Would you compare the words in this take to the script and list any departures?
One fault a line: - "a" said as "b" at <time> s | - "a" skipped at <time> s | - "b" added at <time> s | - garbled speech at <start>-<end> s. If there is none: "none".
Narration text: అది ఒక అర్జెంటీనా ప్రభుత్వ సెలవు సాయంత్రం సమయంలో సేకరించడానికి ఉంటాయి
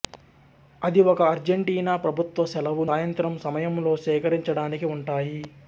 none